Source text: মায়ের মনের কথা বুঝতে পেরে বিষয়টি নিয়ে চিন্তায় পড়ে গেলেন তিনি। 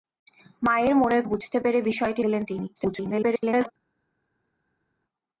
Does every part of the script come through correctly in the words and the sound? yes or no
no